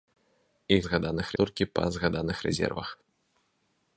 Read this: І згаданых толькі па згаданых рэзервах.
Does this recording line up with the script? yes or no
yes